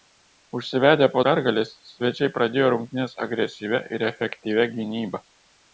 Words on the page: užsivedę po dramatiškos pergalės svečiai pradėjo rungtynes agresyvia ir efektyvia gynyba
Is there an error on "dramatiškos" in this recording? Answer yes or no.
yes